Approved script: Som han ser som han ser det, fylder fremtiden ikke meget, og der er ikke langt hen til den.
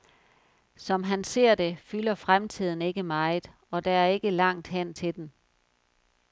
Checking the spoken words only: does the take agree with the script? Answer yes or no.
no